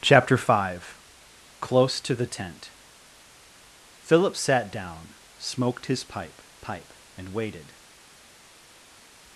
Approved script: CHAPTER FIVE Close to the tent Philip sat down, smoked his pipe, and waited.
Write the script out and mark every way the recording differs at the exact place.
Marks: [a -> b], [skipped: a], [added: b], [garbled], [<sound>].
CHAPTER FIVE Close to the tent Philip sat down, smoked his pipe, [added: pipe] and waited.